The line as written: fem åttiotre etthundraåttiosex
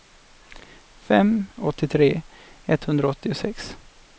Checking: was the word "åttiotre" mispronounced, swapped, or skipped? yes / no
no